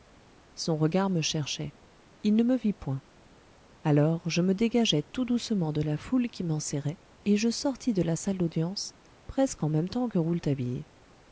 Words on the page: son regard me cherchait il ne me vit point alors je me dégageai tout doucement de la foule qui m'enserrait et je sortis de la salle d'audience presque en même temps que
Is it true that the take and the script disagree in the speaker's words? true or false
false